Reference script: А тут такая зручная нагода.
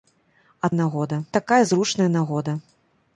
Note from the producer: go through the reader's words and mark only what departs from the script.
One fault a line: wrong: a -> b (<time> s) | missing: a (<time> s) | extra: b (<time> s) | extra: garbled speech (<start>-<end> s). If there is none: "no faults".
wrong: тут -> нагода (0.7 s)